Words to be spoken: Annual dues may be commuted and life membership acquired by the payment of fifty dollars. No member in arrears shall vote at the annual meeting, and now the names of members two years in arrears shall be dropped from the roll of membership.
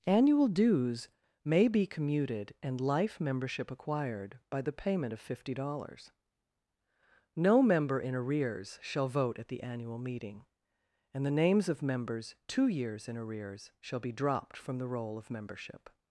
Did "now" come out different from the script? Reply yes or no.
yes